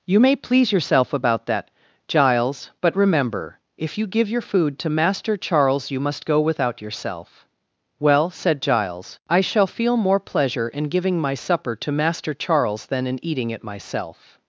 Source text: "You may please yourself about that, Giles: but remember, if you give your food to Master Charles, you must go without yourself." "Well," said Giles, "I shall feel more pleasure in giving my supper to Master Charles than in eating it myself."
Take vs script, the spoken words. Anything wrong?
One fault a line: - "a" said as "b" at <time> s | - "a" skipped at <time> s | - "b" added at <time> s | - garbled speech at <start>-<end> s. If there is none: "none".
none